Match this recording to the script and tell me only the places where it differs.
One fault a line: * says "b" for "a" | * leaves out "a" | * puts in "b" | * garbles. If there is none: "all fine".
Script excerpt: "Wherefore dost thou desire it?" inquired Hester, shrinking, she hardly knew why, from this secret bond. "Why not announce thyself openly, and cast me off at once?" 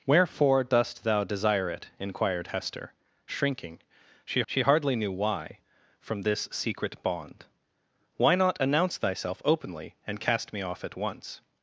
* puts in "she"